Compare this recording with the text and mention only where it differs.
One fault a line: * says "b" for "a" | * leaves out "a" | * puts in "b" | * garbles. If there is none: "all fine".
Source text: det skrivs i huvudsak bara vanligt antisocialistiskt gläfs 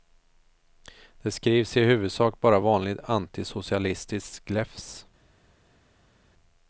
all fine